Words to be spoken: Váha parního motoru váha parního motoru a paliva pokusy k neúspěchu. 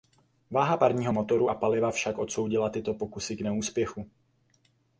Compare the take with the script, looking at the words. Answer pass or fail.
fail